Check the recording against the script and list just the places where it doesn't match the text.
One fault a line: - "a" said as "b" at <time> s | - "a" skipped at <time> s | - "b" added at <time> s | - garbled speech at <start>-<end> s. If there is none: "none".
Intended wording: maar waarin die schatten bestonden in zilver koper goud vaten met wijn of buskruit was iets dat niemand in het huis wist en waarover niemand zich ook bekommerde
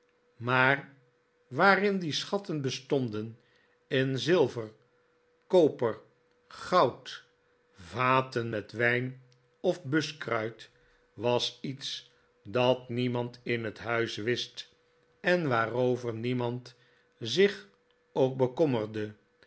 none